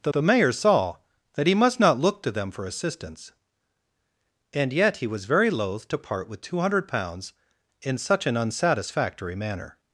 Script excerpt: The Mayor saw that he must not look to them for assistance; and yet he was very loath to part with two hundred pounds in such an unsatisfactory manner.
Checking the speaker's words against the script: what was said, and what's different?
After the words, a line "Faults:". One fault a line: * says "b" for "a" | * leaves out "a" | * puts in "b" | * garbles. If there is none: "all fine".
The the Mayor saw that he must not look to them for assistance; and yet he was very loath to part with two hundred pounds in such an unsatisfactory manner.
Faults:
* puts in "the"